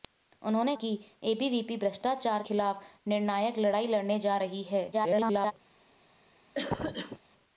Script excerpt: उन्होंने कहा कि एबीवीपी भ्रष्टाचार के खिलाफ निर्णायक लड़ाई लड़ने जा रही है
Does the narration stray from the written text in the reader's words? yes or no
yes